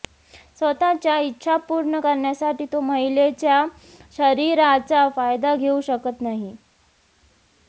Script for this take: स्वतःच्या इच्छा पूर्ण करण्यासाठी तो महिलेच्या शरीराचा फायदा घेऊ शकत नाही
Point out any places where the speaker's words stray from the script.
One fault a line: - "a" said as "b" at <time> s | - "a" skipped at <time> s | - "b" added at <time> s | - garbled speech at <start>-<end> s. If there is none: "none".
none